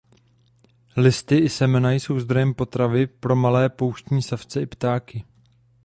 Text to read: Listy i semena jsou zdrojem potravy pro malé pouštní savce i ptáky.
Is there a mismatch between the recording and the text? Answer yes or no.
no